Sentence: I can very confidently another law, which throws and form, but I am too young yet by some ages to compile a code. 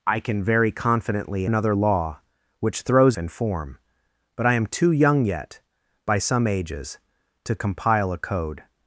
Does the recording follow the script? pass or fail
pass